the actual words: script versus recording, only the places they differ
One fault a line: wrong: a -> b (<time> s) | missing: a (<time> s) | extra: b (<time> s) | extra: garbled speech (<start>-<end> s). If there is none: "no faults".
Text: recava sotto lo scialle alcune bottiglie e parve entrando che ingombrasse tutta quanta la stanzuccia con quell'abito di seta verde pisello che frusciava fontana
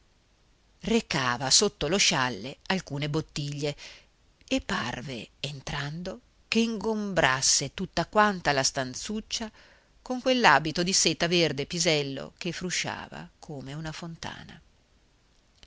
extra: come una (13.4 s)